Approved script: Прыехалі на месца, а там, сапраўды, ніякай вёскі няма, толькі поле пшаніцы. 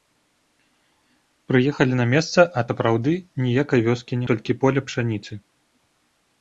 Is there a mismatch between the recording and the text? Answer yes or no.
yes